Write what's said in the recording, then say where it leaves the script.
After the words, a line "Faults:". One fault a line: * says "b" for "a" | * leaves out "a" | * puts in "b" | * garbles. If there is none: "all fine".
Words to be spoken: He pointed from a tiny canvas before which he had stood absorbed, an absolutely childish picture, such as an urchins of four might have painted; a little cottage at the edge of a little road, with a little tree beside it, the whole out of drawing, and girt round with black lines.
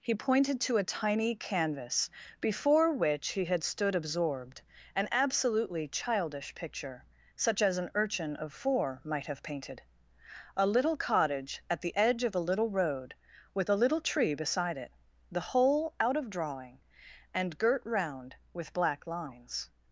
He pointed to a tiny canvas before which he had stood absorbed, an absolutely childish picture, such as an urchin of four might have painted; a little cottage at the edge of a little road, with a little tree beside it, the whole out of drawing, and girt round with black lines.
Faults:
* says "to" for "from"
* says "urchin" for "urchins"